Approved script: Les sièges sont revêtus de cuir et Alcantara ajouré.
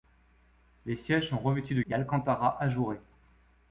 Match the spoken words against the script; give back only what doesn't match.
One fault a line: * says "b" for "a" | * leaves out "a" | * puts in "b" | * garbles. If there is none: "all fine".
* leaves out "cuir"